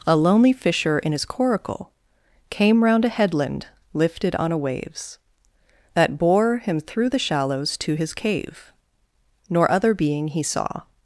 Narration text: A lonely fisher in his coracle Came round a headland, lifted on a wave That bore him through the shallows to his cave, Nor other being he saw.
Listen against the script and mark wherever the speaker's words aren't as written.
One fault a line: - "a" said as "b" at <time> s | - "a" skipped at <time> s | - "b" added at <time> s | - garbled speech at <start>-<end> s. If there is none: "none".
- "wave" said as "waves" at 4.6 s